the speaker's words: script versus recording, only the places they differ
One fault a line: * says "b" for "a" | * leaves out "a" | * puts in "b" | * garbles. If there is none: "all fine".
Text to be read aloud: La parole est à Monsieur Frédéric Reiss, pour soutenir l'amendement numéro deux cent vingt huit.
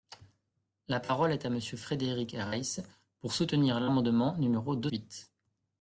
* leaves out "cent vingt"